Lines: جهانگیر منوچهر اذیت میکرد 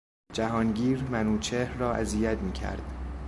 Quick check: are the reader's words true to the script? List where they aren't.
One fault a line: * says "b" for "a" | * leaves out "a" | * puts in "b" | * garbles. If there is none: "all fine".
* puts in "را"